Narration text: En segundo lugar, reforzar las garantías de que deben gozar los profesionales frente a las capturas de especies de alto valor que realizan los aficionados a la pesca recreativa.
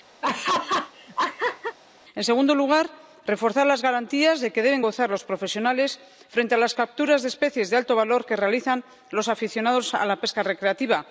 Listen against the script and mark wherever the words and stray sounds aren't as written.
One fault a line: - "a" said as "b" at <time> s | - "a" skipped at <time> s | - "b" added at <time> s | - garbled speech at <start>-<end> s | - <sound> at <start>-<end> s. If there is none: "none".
- laugh at 0.2-1.8 s